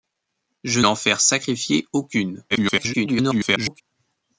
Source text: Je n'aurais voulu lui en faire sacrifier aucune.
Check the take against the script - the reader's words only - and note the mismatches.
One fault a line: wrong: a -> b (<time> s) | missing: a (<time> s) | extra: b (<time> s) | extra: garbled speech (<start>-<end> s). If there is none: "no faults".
missing: n'aurais voulu lui (0.8 s)
extra: garbled speech (2.5-3.8 s)